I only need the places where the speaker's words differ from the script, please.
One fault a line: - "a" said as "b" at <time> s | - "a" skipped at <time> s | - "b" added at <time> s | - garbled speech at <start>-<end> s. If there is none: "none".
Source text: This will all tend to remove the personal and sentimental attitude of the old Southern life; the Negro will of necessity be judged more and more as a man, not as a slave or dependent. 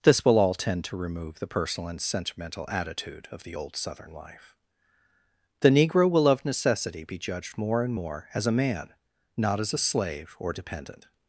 none